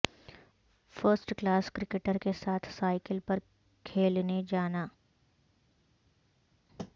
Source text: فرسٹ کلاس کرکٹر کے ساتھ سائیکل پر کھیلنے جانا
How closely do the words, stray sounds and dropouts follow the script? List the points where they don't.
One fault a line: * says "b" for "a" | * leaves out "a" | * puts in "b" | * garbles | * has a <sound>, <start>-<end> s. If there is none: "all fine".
all fine